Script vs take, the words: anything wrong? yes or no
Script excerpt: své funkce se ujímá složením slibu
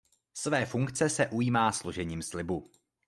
no